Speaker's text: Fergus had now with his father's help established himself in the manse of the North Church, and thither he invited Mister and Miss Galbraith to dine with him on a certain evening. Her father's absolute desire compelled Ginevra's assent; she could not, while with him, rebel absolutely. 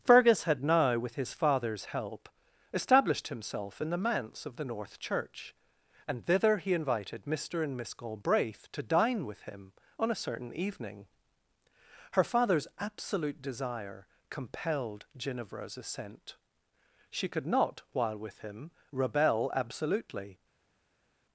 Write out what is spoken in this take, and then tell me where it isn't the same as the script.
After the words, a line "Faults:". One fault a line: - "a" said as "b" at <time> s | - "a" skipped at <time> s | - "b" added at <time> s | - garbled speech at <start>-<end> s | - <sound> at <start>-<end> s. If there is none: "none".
Fergus had now with his father's help established himself in the manse of the North Church, and thither he invited Mister and Miss Galbraith to dine with him on a certain evening. Her father's absolute desire compelled Ginevra's assent; she could not, while with him, rebel absolutely.
Faults:
none